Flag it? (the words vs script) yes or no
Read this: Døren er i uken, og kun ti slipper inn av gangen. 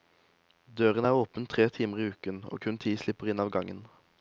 yes